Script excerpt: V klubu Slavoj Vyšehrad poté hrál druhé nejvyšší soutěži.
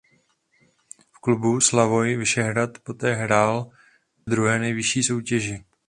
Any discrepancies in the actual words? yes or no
no